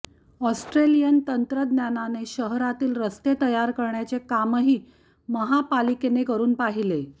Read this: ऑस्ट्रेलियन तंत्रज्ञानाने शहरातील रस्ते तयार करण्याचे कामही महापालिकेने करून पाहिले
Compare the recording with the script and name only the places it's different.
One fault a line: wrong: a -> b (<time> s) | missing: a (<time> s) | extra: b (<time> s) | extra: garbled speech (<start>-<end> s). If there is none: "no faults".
no faults